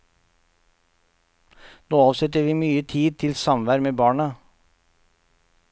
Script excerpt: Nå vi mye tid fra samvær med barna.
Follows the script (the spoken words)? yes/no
no